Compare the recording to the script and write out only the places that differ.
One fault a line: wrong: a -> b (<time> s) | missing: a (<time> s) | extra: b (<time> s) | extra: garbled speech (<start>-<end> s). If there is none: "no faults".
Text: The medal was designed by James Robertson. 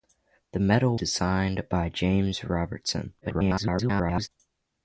missing: was (1.0 s)
extra: garbled speech (3.2-4.3 s)